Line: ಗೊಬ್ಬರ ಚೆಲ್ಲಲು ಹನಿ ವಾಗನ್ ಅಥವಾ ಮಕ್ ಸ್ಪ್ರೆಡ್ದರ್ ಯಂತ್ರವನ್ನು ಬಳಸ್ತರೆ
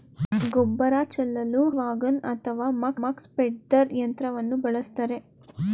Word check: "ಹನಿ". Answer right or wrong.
wrong